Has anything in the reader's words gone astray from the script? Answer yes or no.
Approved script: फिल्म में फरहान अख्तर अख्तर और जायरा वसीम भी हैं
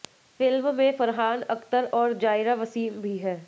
yes